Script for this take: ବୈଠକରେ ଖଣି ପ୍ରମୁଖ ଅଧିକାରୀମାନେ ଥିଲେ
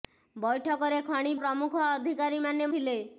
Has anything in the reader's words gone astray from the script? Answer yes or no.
no